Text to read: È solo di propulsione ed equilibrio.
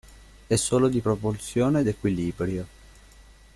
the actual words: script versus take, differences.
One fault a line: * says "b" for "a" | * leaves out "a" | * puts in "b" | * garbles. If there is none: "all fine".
all fine